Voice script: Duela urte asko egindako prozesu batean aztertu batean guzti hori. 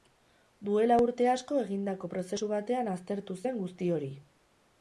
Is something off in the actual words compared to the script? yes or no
yes